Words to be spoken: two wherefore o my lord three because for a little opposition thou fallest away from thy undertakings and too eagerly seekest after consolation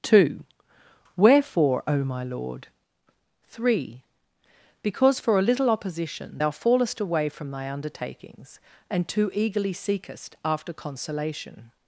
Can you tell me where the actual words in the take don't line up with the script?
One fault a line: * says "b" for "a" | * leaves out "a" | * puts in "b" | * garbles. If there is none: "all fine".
all fine